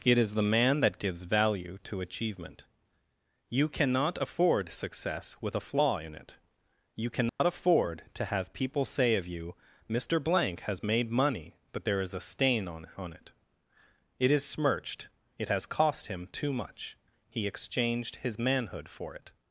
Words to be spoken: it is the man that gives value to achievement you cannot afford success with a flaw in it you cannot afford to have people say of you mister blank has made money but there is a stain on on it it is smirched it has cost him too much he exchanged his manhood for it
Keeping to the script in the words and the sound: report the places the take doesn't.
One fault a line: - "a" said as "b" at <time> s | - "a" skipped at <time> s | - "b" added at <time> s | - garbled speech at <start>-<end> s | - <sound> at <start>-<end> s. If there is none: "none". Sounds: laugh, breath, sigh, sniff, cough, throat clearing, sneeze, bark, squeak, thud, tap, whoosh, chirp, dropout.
- dropout at 7.3-7.4 s